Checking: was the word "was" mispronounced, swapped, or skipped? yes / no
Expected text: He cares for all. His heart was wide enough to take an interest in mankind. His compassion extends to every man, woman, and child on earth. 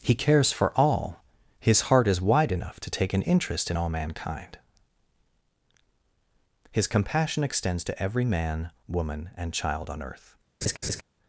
yes